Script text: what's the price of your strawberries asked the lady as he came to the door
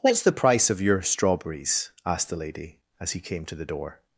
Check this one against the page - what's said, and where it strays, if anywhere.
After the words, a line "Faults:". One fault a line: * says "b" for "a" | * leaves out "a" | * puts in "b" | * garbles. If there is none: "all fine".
what's the price of your strawberries asked the lady as he came to the door
Faults:
all fine